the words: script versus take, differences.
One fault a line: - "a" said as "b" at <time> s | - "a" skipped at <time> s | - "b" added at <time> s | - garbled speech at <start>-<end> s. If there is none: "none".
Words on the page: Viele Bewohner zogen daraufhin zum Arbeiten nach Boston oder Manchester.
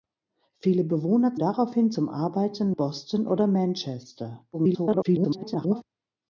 - "zogen" skipped at 1.4 s
- "nach" skipped at 2.7 s
- garbled speech at 4.5-5.8 s